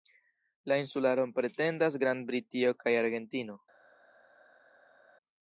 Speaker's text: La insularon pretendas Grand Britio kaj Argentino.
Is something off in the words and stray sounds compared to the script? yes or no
no